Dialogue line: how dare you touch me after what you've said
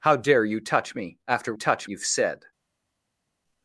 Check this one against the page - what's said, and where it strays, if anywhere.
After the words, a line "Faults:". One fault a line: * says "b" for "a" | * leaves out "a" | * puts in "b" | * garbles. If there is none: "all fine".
how dare you touch me after touch you've said
Faults:
* says "touch" for "what"